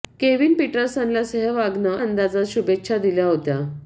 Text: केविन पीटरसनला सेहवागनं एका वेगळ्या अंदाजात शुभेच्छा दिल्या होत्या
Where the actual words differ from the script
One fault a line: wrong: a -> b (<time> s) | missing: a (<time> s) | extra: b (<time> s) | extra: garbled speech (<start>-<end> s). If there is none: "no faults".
missing: एका वेगळ्या (2.0 s)